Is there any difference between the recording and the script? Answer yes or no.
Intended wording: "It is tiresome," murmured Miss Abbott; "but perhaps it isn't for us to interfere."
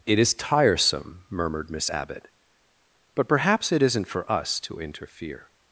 no